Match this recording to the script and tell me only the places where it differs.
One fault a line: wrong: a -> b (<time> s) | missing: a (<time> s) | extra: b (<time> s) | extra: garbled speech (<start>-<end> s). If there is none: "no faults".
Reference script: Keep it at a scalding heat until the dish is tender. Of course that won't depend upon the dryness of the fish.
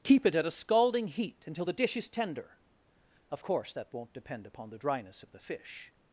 no faults